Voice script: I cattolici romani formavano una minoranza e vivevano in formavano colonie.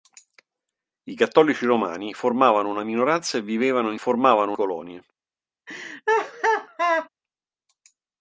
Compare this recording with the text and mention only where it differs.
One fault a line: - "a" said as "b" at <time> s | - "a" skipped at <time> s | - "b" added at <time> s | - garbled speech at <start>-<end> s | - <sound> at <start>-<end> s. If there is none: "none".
- laugh at 5.7-7.1 s